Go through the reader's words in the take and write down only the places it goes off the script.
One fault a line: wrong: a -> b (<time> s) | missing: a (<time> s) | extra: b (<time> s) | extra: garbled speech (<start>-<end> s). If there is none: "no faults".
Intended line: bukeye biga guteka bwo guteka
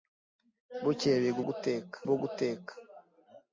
no faults